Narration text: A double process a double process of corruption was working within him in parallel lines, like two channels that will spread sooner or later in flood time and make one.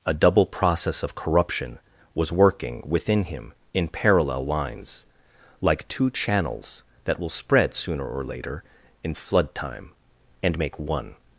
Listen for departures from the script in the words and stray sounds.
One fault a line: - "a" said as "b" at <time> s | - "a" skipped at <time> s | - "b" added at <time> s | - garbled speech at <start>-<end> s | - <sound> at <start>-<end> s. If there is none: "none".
- "a double process" skipped at 1.0 s